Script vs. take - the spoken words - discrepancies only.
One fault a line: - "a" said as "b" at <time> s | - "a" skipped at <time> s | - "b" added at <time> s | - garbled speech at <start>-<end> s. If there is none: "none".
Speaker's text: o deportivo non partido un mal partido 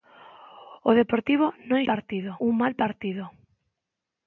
none